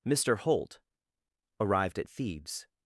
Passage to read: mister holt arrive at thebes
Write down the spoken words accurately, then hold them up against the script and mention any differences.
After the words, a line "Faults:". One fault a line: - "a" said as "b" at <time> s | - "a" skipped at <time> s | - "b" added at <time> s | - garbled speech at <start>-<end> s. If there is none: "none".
mister holt arrived at thebes
Faults:
- "arrive" said as "arrived" at 1.6 s